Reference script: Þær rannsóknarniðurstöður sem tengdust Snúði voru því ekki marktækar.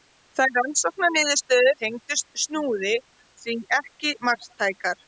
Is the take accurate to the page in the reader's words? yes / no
no